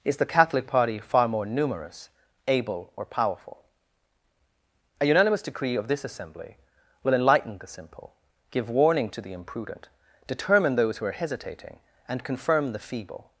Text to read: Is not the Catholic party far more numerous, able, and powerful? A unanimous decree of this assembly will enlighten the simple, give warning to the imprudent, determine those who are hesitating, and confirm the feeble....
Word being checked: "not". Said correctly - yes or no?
no